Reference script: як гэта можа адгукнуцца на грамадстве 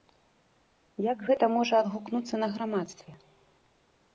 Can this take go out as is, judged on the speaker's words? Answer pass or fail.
pass